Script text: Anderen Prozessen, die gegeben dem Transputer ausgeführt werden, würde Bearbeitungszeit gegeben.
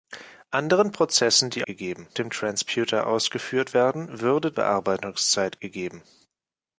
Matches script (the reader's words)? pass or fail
pass